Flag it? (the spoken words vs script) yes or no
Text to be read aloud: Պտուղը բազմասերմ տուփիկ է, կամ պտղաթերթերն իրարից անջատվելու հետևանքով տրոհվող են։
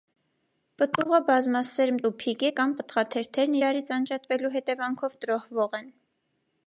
no